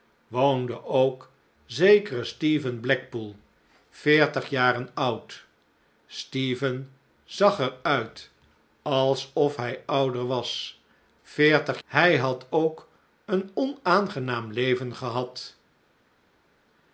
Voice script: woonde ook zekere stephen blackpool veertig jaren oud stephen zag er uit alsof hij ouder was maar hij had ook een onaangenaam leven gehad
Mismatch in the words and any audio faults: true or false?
true